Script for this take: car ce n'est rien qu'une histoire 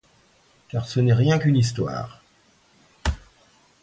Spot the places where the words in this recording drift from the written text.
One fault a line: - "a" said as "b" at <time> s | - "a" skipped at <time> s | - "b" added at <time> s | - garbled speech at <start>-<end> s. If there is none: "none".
none